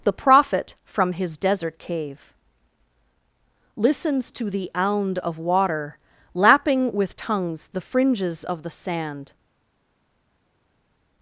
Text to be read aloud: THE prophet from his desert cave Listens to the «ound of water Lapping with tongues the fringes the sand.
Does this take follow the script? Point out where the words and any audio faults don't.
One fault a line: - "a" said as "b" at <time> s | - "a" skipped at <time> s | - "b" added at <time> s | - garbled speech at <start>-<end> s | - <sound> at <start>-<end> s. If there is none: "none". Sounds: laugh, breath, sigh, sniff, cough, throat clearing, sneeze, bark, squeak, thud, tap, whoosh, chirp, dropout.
- "of" added at 8.4 s